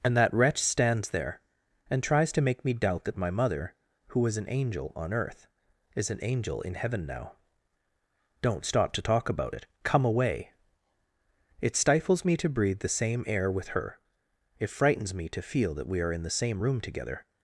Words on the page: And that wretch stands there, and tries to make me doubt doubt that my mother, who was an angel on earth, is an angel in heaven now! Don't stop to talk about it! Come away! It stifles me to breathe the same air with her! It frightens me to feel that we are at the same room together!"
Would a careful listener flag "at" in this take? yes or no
yes